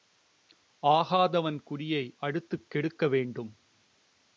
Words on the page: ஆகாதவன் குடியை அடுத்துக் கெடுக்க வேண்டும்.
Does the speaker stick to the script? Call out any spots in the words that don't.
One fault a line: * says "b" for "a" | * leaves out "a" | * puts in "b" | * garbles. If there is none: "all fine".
all fine